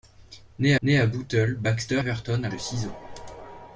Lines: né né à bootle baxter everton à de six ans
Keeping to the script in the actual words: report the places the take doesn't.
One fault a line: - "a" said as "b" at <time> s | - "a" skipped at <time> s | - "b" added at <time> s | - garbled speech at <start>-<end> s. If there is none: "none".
none